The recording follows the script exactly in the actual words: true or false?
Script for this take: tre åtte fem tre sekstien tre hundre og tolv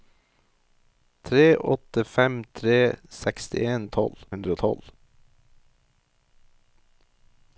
false